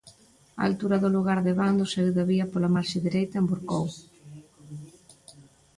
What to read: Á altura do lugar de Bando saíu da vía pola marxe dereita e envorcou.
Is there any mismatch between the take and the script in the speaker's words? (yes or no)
no